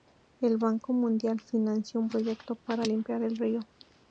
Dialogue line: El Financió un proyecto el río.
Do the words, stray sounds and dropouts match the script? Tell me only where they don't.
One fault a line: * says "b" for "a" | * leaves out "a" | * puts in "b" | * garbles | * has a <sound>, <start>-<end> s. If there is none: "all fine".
* puts in "Banco Mundial"
* puts in "para limpiar"